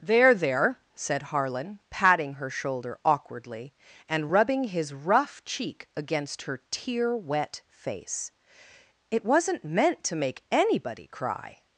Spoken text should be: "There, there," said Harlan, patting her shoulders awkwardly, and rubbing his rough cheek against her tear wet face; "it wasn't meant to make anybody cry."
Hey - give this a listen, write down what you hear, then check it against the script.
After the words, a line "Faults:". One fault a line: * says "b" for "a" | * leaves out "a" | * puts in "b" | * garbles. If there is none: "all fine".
"There, there," said Harlan, patting her shoulder awkwardly, and rubbing his rough cheek against her tear wet face; "it wasn't meant to make anybody cry."
Faults:
* says "shoulder" for "shoulders"